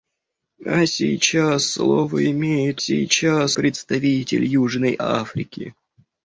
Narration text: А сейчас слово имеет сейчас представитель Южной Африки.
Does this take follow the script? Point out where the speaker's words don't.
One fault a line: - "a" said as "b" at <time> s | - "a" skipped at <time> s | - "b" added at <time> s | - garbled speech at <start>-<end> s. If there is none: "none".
none